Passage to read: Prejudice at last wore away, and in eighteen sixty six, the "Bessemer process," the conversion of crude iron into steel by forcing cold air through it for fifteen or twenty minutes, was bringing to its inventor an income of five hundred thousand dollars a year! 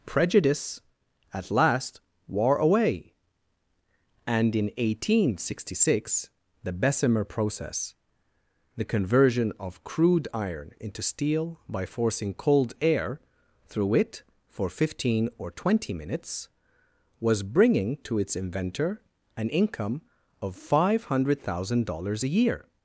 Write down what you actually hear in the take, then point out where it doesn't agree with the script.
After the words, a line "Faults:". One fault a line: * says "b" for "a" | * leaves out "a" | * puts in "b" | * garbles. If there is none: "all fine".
Prejudice at last wore away, and in eighteen sixty six, the "Bessemer process," the conversion of crude iron into steel by forcing cold air through it for fifteen or twenty minutes, was bringing to its inventor an income of five hundred thousand dollars a year!
Faults:
all fine